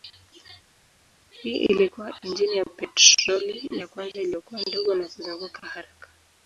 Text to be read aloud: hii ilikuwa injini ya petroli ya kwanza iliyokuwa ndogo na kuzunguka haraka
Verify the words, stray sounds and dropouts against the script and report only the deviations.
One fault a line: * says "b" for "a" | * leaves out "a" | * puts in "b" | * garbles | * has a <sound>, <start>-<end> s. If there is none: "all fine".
all fine